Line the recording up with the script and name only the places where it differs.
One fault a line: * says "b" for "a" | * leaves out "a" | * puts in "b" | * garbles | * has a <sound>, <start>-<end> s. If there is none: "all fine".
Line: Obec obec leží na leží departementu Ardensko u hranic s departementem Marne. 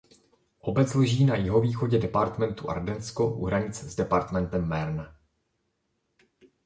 * leaves out "obec"
* says "jihovýchodě" for "leží"